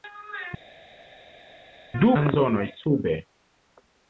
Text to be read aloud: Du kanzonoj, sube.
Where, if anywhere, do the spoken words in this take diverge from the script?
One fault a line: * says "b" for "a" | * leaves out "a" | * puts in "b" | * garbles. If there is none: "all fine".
all fine